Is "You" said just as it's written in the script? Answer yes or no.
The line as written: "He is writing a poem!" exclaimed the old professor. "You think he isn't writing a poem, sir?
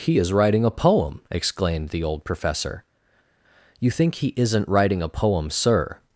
yes